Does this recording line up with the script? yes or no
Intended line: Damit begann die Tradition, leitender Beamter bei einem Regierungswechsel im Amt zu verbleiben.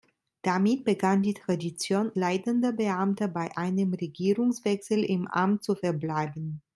yes